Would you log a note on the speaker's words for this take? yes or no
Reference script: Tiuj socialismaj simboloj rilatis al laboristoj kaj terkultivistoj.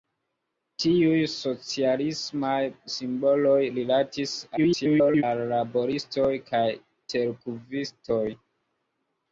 yes